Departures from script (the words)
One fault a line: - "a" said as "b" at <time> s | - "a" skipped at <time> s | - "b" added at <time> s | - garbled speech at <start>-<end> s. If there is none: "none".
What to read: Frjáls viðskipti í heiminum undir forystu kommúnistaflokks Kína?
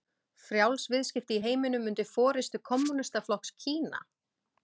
none